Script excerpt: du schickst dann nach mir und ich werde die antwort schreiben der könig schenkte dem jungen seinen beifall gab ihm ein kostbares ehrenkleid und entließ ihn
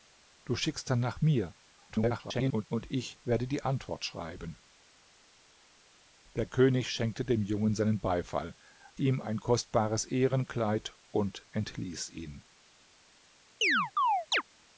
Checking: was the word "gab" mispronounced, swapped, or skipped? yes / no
yes